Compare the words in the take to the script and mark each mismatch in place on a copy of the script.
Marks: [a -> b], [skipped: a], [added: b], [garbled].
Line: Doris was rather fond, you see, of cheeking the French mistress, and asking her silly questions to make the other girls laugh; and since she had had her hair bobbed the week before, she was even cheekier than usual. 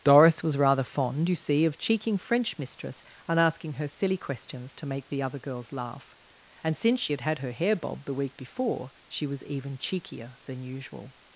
Doris was rather fond, you see, of cheeking [skipped: the] French mistress, and asking her silly questions to make the other girls laugh; and since she had had her hair bobbed the week before, she was even cheekier than usual.